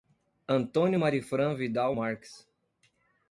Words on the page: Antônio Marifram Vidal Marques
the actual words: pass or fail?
pass